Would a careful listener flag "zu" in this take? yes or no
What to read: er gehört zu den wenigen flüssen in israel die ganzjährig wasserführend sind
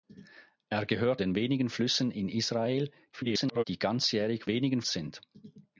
yes